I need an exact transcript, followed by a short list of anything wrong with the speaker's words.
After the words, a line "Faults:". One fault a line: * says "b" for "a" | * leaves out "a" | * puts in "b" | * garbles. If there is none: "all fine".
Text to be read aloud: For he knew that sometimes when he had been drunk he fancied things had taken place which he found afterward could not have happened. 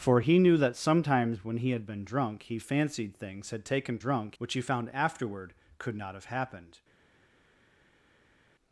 For he knew that sometimes when he had been drunk he fancied things had taken drunk which he found afterward could not have happened.
Faults:
* says "drunk" for "place"